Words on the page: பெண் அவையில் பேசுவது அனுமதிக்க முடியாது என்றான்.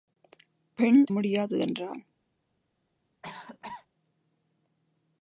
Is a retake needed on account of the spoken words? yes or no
yes